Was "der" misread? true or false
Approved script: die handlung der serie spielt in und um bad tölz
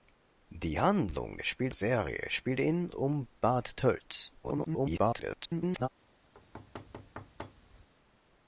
true